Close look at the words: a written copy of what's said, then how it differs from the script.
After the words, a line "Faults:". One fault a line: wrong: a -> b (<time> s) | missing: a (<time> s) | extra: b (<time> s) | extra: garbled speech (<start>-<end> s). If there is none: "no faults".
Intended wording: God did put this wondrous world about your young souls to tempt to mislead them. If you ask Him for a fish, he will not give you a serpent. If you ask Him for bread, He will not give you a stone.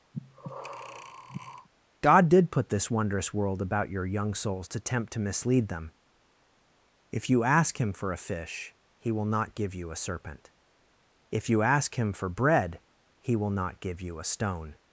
God did put this wondrous world about your young souls to tempt to mislead them. If you ask Him for a fish, he will not give you a serpent. If you ask Him for bread, He will not give you a stone.
Faults:
no faults